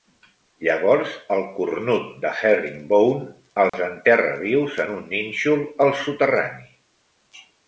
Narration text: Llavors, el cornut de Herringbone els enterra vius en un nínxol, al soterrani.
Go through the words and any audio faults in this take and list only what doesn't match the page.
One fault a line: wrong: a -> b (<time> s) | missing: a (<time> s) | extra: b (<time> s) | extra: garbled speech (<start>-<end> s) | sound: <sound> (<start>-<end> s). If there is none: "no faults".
sound: dropout (3.7-3.7 s)